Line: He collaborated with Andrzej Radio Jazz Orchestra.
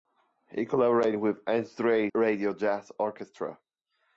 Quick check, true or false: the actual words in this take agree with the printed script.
true